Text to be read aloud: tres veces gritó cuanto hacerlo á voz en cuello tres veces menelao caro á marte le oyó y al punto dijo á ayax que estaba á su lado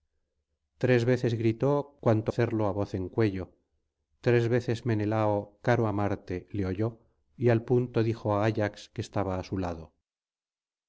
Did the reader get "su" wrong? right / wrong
right